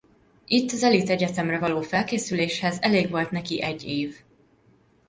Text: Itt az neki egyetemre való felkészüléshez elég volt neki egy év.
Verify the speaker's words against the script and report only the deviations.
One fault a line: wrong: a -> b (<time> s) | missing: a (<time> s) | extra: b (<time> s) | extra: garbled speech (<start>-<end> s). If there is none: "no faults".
wrong: neki -> elit (0.8 s)